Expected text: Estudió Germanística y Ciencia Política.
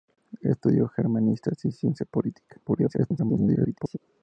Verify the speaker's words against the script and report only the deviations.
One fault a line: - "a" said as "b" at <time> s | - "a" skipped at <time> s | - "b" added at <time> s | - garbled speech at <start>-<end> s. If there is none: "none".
- garbled speech at 2.7-4.0 s